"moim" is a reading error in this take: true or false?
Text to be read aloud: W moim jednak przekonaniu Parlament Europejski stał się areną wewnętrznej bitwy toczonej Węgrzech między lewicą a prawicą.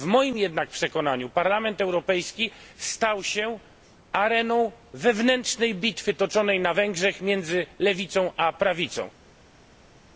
false